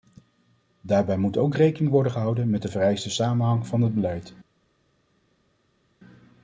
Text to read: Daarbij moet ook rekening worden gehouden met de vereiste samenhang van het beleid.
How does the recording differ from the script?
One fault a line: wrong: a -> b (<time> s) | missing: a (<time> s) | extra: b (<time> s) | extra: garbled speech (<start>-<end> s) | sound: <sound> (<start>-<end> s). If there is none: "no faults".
no faults